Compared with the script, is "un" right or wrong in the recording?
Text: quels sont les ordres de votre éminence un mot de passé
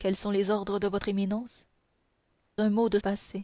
right